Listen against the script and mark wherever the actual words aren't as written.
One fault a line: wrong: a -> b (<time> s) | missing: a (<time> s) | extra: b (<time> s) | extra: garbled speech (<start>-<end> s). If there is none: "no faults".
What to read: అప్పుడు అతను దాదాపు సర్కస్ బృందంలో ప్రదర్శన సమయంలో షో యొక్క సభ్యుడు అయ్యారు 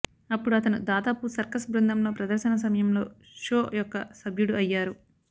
no faults